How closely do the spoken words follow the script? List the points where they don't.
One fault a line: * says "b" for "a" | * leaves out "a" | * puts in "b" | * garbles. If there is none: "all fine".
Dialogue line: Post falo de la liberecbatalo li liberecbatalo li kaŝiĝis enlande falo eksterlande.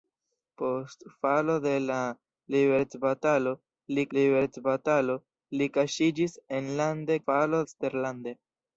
all fine